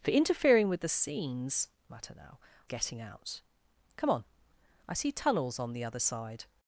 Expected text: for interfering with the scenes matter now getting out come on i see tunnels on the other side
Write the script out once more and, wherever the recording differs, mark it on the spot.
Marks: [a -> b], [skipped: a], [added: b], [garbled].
for interfering with the scenes matter now getting out come on i see tunnels on the other side